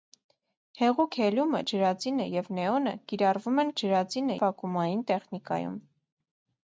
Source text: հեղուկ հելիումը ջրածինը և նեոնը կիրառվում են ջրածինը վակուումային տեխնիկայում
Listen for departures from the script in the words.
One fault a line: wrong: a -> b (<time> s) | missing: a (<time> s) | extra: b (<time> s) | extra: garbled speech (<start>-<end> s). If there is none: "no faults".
no faults